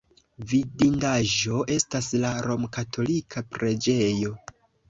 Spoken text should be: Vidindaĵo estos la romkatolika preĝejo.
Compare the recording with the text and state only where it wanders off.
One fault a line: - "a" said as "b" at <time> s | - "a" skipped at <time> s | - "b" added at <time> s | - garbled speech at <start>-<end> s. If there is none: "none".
- "estos" said as "estas" at 1.8 s